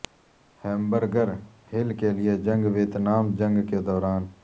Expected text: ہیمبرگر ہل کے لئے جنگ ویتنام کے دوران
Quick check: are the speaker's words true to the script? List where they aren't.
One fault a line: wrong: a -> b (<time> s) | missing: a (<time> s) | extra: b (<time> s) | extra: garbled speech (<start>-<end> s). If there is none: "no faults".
extra: جنگ (3.4 s)